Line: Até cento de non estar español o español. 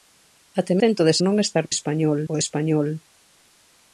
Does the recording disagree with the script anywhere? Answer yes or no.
no